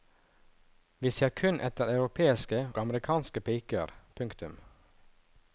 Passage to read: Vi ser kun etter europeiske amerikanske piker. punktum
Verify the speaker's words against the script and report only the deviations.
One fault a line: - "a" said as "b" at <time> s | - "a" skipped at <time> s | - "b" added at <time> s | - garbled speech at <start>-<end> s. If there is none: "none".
none